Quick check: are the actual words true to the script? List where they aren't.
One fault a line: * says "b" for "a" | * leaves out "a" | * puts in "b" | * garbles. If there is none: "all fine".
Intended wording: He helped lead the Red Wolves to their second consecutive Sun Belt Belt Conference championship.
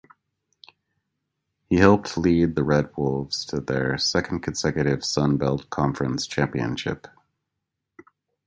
* leaves out "Belt"